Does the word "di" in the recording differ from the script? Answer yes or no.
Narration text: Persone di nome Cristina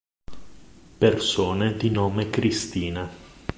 no